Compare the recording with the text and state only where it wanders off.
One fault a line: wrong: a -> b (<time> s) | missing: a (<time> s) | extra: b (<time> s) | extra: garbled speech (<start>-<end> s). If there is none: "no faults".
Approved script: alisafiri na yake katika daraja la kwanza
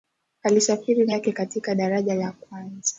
no faults